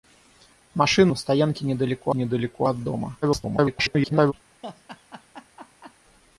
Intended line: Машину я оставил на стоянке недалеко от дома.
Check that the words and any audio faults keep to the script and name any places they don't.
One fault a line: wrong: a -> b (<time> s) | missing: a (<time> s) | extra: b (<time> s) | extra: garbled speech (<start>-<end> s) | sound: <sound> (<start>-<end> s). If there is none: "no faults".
missing: я оставил (1.1 s)
extra: недалеко (2.1 s)
extra: garbled speech (3.2-4.3 s)
sound: laugh (4.6-5.9 s)